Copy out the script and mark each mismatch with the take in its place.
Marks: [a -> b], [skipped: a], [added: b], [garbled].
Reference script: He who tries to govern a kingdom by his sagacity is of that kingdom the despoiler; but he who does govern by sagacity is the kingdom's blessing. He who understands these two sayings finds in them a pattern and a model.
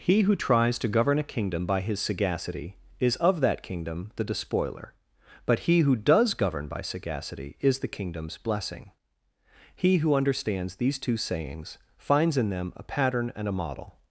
He who tries to govern a kingdom by his sagacity is of that kingdom the despoiler; but he who does govern by sagacity is the kingdom's blessing. He who understands these two sayings finds in them a pattern and a model.